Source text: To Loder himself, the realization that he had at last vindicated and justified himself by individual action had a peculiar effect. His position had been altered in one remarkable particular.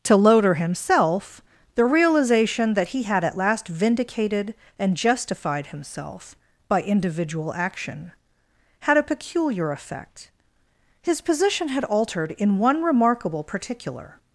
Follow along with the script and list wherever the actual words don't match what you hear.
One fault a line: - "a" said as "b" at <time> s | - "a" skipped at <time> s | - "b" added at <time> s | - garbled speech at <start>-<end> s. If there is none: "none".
- "been" skipped at 11.8 s